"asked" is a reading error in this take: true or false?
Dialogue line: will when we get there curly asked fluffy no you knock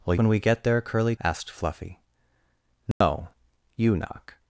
false